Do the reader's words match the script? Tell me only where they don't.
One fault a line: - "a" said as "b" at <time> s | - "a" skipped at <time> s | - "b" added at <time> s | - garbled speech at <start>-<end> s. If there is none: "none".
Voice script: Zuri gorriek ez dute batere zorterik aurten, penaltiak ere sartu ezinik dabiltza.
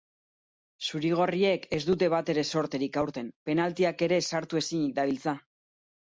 none